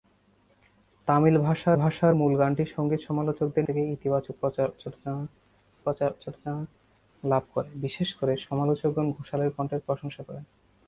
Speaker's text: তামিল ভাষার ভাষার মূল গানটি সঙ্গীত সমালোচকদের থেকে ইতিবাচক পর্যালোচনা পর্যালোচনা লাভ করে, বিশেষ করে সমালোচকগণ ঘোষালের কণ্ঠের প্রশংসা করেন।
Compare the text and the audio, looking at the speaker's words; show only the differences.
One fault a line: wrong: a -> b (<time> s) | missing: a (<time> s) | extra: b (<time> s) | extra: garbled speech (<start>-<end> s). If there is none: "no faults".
no faults